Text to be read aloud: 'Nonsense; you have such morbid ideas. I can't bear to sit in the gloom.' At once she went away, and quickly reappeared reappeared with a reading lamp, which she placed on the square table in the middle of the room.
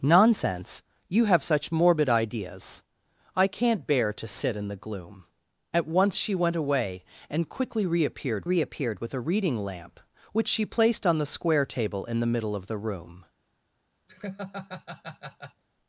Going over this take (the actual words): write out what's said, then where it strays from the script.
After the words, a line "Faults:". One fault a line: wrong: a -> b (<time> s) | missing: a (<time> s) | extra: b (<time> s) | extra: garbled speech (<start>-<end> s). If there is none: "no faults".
'Nonsense; you have such morbid ideas. I can't bear to sit in the gloom.' At once she went away, and quickly reappeared reappeared with a reading lamp, which she placed on the square table in the middle of the room.
Faults:
no faults